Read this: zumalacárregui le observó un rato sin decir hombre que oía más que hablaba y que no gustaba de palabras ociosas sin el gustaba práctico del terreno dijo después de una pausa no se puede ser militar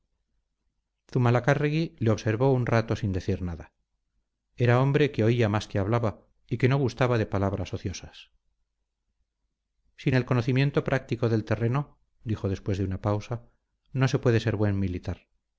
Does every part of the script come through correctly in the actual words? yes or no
no